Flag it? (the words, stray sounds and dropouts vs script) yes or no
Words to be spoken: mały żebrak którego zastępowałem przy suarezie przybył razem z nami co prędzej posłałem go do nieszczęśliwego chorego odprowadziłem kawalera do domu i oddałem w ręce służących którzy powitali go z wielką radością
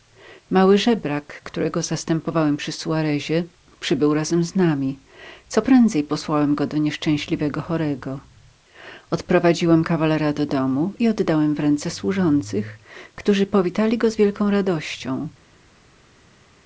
no